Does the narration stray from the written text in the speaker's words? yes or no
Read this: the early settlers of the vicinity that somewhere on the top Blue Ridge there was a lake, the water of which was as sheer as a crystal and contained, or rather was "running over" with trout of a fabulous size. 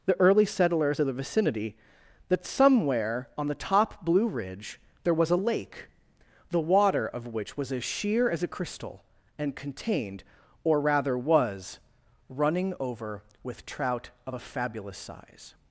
no